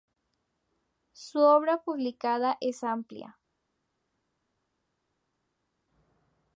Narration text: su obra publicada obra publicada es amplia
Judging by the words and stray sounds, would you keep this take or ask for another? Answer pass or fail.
fail